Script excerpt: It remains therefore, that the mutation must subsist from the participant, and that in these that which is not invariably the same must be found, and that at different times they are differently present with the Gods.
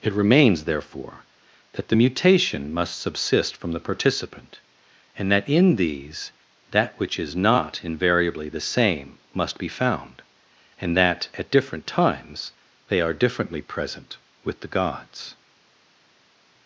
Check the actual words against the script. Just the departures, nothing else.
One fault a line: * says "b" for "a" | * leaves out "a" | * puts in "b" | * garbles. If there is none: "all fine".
all fine